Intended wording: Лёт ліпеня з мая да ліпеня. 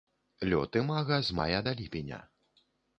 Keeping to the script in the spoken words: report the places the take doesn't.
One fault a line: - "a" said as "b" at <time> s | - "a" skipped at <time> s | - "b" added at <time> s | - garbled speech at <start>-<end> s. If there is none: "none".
- "ліпеня" said as "імага" at 0.8 s